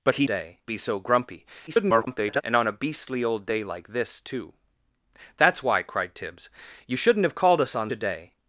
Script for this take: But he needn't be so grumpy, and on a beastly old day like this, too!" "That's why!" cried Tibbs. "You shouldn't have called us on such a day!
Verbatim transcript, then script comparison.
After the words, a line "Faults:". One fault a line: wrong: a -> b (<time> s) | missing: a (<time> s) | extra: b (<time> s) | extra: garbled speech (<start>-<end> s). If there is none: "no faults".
But he day be so grumpy, [garbled] and on a beastly old day like this, too!" "That's why!" cried Tibbs. "You shouldn't have called us on a day!
Faults:
wrong: needn't -> day (0.2 s)
extra: garbled speech (1.7-2.4 s)
missing: such (7.9 s)